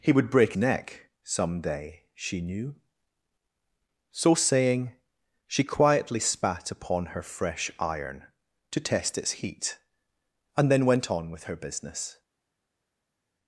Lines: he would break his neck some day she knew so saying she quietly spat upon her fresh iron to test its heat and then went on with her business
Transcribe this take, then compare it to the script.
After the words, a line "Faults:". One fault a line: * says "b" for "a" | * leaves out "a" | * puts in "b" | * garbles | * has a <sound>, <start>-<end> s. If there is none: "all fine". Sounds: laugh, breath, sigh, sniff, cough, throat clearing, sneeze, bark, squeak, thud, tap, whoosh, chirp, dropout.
he would break neck some day she knew so saying she quietly spat upon her fresh iron to test its heat and then went on with her business
Faults:
* leaves out "his"